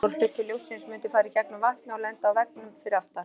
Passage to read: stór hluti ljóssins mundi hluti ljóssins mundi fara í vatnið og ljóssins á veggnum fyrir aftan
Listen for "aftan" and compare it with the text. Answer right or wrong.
right